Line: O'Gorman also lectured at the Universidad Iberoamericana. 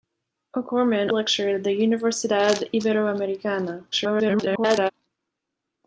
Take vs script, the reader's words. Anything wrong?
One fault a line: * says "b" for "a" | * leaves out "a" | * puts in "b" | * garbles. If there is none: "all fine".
* leaves out "also"
* garbles